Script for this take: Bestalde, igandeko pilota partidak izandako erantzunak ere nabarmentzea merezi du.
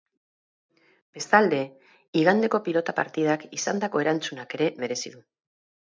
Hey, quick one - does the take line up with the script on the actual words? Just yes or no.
no